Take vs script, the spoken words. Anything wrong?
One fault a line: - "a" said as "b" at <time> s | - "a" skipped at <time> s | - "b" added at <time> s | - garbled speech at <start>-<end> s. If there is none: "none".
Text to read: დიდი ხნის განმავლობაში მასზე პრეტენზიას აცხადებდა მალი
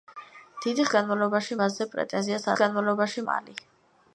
- "ხნის" skipped at 0.8 s
- "აცხადებდა" said as "განმავლობაში" at 2.6 s